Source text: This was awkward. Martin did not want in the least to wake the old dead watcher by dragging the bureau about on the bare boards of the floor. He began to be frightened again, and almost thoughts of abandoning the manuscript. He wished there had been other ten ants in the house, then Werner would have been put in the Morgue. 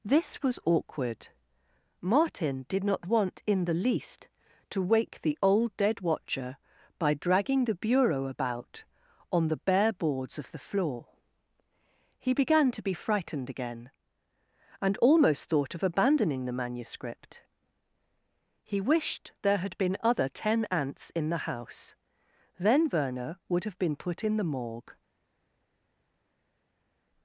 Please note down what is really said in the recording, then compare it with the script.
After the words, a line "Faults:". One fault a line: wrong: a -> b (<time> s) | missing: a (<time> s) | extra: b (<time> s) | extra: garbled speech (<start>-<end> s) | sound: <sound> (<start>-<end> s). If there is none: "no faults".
This was awkward. Martin did not want in the least to wake the old dead watcher by dragging the bureau about on the bare boards of the floor. He began to be frightened again, and almost thought of abandoning the manuscript. He wished there had been other ten ants in the house, then Werner would have been put in the Morgue.
Faults:
wrong: thoughts -> thought (15.5 s)